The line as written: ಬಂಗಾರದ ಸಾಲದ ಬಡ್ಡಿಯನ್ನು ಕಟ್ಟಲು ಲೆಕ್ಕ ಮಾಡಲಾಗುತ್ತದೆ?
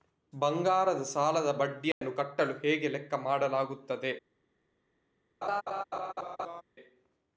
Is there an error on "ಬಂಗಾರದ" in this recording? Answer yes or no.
no